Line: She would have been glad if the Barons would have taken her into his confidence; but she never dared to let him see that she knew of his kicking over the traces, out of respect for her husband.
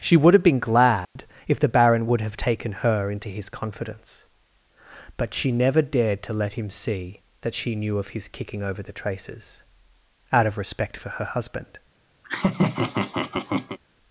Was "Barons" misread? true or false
true